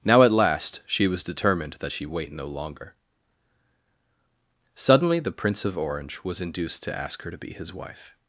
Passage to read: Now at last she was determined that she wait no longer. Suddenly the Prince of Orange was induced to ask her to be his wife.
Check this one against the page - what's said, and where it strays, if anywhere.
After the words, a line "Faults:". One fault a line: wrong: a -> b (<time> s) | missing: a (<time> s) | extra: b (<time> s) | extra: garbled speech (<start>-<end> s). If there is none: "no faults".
Now at last she was determined that she wait no longer. Suddenly the Prince of Orange was induced to ask her to be his wife.
Faults:
no faults